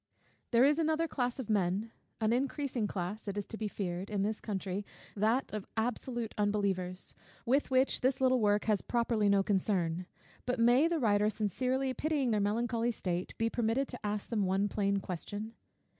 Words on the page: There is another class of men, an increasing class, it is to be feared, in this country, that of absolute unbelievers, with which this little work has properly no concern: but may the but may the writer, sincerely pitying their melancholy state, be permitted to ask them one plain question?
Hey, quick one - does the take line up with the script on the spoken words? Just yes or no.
no